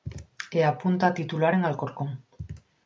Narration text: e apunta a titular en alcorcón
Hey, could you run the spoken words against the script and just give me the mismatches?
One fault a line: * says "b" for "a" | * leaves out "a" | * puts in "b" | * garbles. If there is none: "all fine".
all fine